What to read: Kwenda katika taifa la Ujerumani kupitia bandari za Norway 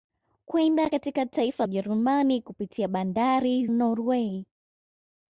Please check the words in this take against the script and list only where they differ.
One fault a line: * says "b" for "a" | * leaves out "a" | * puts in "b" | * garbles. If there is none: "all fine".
* leaves out "la"
* leaves out "za"